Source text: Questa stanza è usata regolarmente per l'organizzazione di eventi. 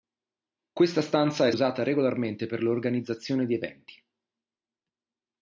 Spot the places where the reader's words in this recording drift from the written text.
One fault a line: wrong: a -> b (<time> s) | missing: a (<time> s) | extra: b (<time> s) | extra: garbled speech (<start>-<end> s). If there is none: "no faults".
no faults